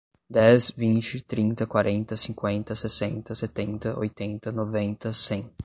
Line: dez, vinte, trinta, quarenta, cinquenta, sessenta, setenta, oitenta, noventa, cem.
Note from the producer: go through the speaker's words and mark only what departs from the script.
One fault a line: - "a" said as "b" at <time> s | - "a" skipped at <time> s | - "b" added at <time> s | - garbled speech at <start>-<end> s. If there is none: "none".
none